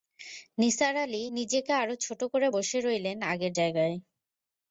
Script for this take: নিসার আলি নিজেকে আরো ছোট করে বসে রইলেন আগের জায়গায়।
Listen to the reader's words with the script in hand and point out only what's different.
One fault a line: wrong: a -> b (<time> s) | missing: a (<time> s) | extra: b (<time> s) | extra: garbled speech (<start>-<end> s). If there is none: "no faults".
no faults